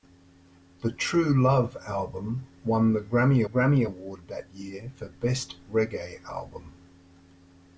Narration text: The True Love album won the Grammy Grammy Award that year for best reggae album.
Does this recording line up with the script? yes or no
yes